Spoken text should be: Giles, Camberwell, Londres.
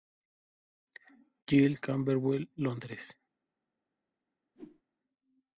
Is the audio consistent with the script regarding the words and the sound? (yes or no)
no